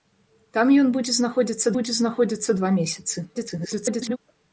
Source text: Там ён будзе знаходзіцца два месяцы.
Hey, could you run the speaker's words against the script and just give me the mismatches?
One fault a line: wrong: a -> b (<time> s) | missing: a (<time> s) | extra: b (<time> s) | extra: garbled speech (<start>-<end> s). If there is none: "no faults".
extra: будзе знаходзіцца (1.7 s)
extra: garbled speech (3.3-4.2 s)